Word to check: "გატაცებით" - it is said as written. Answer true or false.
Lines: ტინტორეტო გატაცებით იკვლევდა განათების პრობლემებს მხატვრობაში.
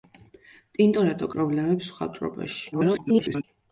false